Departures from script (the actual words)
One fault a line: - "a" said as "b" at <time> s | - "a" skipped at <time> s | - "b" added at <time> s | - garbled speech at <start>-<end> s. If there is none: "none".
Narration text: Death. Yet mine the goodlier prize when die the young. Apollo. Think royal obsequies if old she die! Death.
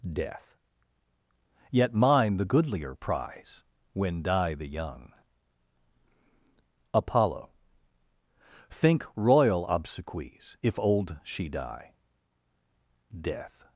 none